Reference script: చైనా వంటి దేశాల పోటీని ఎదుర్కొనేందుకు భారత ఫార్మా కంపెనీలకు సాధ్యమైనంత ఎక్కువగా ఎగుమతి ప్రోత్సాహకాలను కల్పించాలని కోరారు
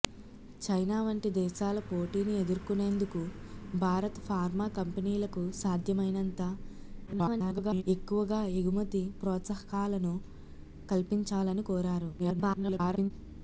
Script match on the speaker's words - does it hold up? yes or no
no